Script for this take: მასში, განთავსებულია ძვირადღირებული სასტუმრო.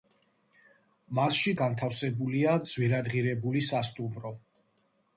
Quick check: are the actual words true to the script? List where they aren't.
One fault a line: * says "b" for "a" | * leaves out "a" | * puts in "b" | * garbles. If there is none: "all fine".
all fine